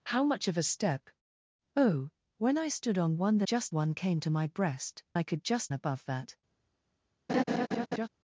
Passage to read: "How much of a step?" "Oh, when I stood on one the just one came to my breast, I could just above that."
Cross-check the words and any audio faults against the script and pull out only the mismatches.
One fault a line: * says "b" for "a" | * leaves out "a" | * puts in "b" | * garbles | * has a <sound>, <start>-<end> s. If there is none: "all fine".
* has a laugh, 7.3-8.1 s